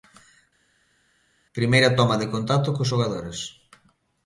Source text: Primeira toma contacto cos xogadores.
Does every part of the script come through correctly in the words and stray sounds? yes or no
no